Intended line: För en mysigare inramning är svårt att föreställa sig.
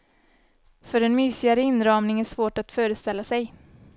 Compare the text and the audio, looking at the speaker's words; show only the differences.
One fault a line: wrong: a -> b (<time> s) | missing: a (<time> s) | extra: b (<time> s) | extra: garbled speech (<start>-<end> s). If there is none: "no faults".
no faults